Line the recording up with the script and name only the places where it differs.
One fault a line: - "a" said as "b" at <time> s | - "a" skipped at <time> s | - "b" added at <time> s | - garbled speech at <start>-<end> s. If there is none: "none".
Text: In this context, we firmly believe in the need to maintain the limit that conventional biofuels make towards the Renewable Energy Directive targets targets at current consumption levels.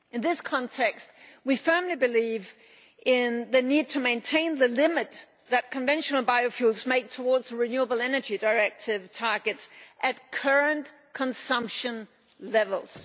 - "targets" skipped at 9.7 s